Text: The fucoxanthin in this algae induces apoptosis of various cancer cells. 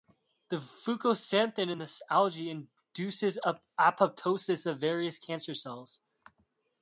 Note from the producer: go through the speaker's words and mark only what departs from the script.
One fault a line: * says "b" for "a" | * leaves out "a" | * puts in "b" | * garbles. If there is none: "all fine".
all fine